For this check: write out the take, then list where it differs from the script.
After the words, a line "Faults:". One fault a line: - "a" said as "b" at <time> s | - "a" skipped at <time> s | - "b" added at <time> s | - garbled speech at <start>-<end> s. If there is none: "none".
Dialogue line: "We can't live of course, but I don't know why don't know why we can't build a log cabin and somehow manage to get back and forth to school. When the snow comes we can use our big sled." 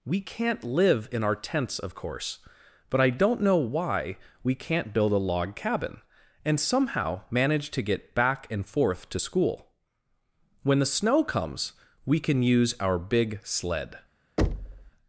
"We can't live in our tents of course, but I don't know why we can't build a log cabin and somehow manage to get back and forth to school. When the snow comes we can use our big sled."
Faults:
- "in our tents" added at 1.1 s
- "don't know why" skipped at 4.2 s